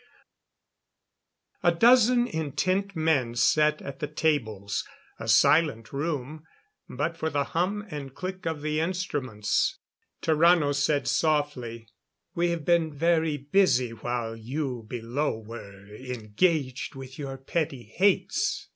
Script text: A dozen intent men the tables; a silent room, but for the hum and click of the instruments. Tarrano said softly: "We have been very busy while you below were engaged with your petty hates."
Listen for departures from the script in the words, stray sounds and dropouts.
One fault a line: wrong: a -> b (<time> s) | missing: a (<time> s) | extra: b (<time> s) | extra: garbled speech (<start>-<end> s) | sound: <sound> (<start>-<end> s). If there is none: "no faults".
extra: sat at (3.3 s)